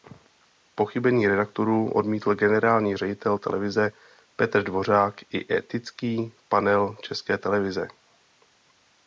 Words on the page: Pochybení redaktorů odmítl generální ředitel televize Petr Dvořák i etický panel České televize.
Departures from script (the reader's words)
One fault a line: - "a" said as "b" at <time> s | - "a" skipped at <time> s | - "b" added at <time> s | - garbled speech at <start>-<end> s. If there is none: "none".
none